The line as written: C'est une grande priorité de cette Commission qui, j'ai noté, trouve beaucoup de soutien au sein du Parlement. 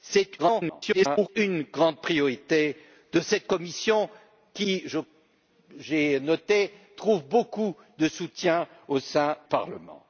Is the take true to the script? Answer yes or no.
no